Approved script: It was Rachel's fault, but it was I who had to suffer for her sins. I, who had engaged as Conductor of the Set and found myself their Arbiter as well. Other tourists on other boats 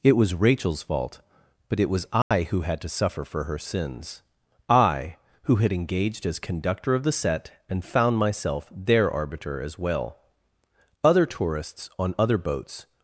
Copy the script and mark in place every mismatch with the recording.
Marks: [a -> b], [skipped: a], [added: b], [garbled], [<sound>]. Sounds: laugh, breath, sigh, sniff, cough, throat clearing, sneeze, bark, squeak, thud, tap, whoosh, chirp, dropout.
It was Rachel's fault, but it was I [dropout] who had to suffer for her sins. I, who had engaged as Conductor of the Set and found myself their Arbiter as well. Other tourists on other boats